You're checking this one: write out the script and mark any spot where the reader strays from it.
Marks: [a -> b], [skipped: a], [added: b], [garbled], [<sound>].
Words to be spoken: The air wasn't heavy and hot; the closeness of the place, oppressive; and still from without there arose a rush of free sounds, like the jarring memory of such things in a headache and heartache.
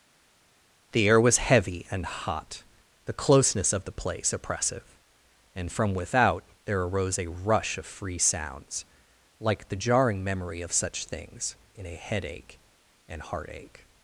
The air [wasn't -> was] heavy and hot; the closeness of the place, oppressive; and [skipped: still] from without there arose a rush of free sounds, like the jarring memory of such things in a headache and heartache.